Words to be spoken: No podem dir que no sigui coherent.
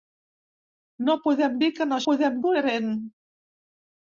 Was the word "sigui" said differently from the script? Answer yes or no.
yes